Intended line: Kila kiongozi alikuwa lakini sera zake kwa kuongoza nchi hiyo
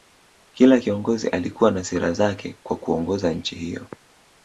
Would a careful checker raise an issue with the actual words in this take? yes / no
yes